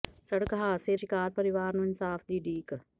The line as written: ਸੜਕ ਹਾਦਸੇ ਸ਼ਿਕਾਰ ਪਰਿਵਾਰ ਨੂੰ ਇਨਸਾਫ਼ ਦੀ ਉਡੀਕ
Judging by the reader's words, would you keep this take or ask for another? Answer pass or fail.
pass